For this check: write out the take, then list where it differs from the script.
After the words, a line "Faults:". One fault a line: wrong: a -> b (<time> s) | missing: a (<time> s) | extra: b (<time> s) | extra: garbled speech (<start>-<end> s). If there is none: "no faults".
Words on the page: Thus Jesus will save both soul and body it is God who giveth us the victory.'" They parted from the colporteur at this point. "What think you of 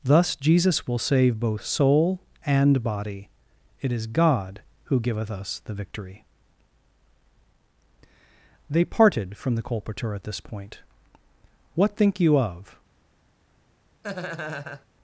Thus Jesus will save both soul and body it is God who giveth us the victory.'" They parted from the colporteur at this point. "What think you of
Faults:
no faults